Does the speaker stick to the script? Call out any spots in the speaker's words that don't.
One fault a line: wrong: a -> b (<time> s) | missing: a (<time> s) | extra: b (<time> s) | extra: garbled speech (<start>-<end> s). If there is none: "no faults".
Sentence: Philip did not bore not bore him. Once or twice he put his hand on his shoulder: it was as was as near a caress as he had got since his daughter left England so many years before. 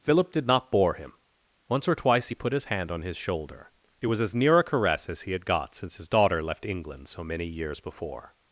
missing: not bore (0.9 s)
missing: was as (4.3 s)